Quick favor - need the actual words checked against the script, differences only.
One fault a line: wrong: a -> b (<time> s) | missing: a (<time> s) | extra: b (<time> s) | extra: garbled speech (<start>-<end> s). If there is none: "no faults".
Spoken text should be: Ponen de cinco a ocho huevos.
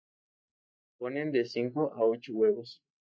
no faults